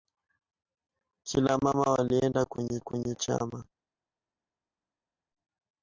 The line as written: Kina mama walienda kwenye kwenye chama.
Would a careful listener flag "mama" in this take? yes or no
no